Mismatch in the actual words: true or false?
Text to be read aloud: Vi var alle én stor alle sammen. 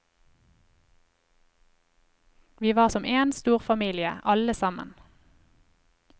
true